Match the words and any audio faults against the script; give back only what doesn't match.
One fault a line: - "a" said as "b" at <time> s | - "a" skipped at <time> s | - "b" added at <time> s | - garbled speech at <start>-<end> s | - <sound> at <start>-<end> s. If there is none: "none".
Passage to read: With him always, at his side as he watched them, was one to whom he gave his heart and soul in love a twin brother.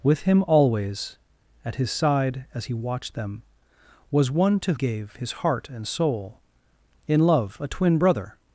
- "whom he" skipped at 4.7 s